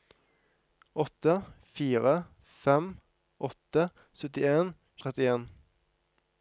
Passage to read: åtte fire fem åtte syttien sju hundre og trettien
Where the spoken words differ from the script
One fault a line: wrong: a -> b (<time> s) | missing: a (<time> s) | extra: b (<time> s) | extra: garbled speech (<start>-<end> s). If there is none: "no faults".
missing: sju hundre (4.7 s)